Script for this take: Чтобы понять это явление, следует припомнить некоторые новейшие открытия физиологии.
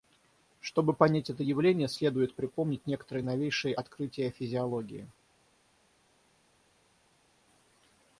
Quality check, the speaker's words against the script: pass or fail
pass